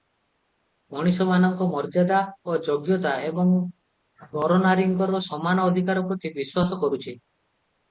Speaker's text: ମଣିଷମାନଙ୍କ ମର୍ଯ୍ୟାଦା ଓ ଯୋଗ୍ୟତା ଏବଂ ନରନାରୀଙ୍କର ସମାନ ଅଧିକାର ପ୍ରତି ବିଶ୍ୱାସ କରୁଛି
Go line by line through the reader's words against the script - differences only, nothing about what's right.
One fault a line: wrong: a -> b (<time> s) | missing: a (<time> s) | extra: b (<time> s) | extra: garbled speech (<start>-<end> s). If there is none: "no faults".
no faults